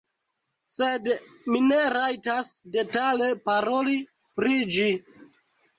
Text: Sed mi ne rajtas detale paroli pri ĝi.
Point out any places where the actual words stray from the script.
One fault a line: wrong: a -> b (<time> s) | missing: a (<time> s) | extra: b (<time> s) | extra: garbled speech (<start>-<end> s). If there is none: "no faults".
no faults